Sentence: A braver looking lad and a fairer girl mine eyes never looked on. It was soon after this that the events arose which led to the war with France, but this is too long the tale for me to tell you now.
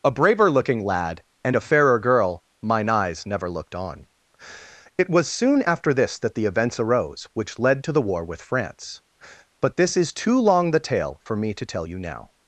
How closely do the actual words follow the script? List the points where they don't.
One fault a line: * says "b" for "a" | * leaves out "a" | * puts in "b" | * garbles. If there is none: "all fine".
all fine